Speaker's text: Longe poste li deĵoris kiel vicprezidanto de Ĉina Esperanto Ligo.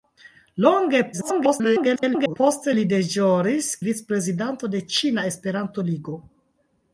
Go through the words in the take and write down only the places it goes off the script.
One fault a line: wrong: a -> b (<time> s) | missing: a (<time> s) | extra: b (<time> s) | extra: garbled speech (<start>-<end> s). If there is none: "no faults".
extra: garbled speech (1.1-2.4 s)
missing: kiel (3.7 s)